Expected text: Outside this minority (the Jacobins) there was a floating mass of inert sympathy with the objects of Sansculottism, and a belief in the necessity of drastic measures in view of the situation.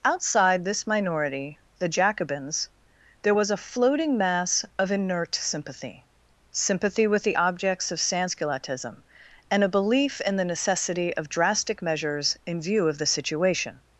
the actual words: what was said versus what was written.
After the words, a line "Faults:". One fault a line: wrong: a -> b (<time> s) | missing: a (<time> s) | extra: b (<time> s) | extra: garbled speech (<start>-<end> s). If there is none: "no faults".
Outside this minority (the Jacobins) there was a floating mass of inert sympathy sympathy with the objects of Sansculottism, and a belief in the necessity of drastic measures in view of the situation.
Faults:
extra: sympathy (6.5 s)